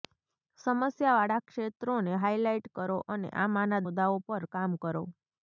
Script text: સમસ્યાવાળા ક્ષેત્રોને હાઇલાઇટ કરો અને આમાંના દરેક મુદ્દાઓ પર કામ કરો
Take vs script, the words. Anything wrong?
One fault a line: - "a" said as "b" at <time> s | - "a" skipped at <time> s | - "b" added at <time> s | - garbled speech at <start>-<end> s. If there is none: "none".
- "દરેક" skipped at 3.9 s